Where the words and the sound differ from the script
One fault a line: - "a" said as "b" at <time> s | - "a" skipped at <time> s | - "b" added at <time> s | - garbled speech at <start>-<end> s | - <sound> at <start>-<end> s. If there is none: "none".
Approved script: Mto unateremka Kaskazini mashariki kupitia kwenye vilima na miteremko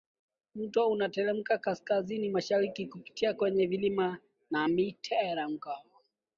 none